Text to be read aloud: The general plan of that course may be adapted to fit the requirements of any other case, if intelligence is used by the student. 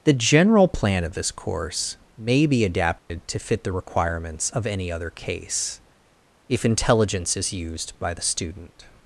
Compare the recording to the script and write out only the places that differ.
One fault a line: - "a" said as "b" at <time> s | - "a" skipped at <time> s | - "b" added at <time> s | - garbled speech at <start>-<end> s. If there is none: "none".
- "that" said as "this" at 1.1 s